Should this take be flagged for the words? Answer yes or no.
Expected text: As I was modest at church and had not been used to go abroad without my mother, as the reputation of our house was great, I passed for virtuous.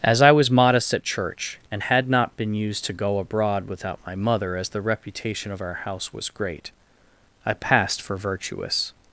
no